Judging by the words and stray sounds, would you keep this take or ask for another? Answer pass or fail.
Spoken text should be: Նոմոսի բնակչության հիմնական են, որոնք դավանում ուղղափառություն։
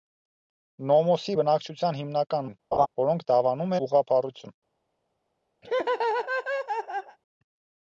fail